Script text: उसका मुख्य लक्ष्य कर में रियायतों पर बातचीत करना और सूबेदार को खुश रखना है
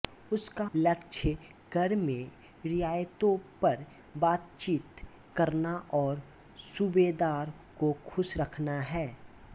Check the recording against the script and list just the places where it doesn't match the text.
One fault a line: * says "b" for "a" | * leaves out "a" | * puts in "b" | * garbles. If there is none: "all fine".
* leaves out "मुख्य"